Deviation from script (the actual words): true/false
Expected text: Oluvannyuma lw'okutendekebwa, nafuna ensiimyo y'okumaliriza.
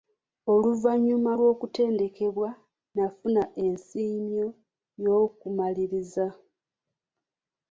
false